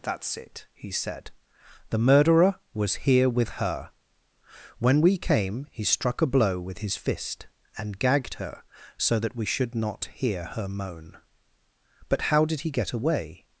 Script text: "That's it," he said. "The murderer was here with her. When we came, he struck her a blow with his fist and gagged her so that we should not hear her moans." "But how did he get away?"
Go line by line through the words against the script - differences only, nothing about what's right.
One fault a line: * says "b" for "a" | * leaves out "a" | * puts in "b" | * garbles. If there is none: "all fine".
* leaves out "her"
* says "moan" for "moans"